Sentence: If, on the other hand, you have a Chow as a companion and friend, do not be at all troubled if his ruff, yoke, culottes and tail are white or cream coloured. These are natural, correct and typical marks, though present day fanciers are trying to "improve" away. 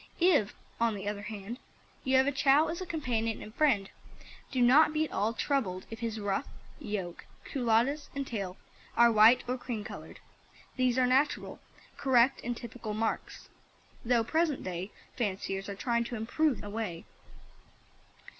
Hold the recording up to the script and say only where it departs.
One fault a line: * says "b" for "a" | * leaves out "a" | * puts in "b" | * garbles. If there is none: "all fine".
all fine